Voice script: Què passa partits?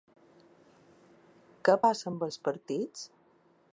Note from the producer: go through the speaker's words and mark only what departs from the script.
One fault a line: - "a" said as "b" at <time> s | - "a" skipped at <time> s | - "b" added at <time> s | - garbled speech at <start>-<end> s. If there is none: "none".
- "amb els" added at 2.1 s